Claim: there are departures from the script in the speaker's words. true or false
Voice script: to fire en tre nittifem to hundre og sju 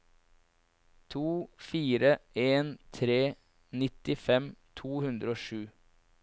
false